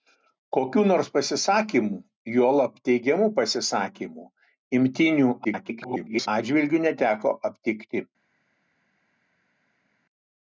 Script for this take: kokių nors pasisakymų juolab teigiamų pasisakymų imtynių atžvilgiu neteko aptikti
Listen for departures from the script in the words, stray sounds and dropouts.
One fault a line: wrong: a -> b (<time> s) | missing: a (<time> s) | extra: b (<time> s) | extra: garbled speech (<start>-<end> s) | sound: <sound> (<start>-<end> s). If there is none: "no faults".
extra: garbled speech (5.4-6.3 s)